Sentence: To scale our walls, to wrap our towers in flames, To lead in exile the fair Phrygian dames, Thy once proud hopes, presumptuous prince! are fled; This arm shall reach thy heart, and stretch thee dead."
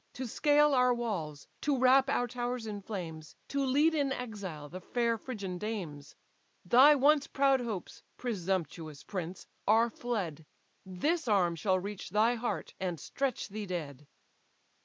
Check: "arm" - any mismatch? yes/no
no